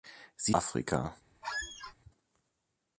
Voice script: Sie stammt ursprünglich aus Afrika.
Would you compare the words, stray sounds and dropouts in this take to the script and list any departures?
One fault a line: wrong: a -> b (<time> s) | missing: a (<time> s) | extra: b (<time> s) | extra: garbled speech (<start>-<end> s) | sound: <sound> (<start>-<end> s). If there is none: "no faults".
missing: stammt ursprünglich aus (0.6 s)
sound: squeak (1.4-1.9 s)